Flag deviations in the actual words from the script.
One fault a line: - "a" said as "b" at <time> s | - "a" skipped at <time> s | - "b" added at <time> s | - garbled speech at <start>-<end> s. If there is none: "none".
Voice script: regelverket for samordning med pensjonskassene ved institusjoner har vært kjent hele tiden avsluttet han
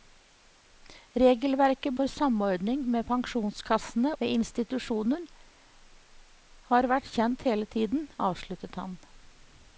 none